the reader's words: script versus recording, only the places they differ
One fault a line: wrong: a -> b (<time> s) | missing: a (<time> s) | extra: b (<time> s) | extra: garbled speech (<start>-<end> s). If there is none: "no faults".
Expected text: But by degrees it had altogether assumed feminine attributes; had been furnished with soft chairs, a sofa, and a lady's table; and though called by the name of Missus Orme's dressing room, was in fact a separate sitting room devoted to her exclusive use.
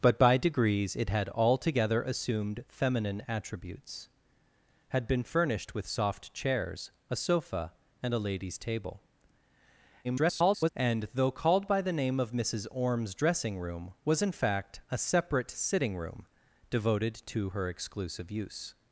extra: garbled speech (10.0-10.7 s)